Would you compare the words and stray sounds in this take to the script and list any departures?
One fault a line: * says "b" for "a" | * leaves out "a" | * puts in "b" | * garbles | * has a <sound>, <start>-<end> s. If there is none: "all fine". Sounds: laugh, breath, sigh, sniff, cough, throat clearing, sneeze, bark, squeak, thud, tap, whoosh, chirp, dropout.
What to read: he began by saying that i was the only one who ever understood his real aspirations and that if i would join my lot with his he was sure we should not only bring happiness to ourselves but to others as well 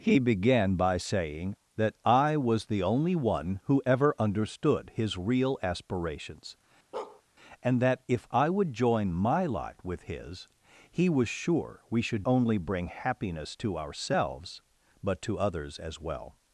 * has a bark, 6.9-7.2 s
* leaves out "not"